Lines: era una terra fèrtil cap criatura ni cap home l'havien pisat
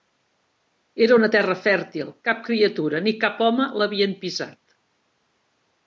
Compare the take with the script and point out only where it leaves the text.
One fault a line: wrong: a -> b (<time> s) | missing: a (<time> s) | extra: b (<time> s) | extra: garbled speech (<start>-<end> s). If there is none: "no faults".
no faults